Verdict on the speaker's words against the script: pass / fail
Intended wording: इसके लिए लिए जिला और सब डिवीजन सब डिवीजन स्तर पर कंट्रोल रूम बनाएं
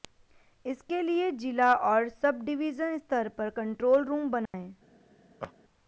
fail